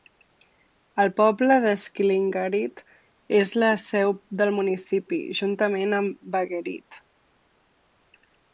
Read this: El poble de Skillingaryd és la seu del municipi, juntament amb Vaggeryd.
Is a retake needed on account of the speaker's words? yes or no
no